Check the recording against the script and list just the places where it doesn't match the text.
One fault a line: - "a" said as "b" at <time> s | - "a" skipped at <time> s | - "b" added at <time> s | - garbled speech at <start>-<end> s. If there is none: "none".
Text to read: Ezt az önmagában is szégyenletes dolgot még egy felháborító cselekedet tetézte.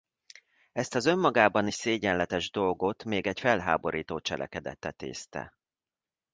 none